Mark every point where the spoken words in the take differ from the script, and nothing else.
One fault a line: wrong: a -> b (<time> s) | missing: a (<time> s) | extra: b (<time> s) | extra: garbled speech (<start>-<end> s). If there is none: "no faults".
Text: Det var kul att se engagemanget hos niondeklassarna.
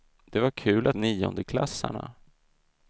missing: se engagemanget hos (1.0 s)